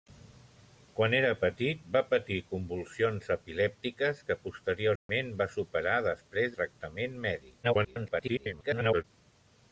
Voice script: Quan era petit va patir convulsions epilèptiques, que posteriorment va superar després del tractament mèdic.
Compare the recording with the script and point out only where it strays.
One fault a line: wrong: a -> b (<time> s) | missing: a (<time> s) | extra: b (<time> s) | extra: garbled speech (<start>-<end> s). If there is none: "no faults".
missing: del (6.6 s)
extra: garbled speech (7.6-9.0 s)